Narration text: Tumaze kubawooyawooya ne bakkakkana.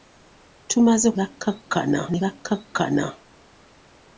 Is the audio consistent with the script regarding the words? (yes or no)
no